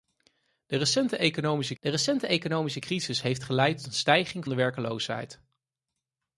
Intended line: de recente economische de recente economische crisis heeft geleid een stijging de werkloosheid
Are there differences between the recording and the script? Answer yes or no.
no